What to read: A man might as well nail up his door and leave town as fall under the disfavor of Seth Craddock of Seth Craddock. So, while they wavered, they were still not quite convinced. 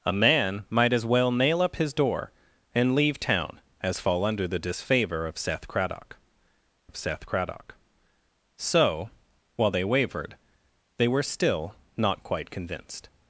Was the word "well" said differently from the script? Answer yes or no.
no